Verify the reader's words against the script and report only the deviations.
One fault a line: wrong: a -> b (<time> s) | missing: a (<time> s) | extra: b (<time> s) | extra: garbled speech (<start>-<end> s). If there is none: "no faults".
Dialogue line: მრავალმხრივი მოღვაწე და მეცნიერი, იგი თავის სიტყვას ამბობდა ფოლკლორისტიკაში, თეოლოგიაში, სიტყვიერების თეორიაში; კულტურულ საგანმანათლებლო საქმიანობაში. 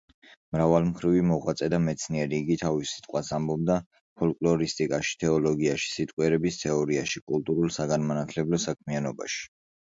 no faults